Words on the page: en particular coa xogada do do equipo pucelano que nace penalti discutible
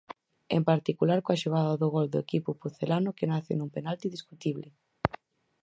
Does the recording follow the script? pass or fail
fail